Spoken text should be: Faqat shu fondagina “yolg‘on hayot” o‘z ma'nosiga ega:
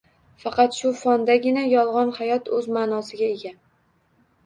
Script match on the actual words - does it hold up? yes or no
yes